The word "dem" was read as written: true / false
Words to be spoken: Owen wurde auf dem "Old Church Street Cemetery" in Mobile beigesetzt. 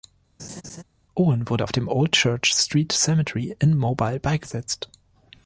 true